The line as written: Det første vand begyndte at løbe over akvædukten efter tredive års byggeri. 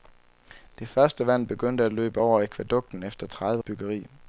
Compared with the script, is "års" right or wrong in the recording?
wrong